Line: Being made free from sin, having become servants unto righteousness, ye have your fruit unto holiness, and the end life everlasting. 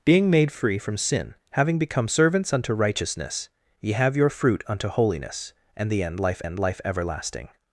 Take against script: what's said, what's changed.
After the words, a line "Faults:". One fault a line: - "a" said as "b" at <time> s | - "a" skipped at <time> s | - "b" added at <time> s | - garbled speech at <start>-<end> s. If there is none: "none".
Being made free from sin, having become servants unto righteousness, ye have your fruit unto holiness, and the end life end life everlasting.
Faults:
- "end life" added at 6.4 s